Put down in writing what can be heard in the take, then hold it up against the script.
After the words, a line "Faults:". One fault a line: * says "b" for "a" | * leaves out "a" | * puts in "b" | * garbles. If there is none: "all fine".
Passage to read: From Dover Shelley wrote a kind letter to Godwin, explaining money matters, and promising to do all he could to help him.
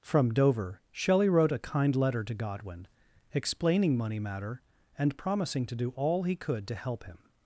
From Dover Shelley wrote a kind letter to Godwin, explaining money matter, and promising to do all he could to help him.
Faults:
* says "matter" for "matters"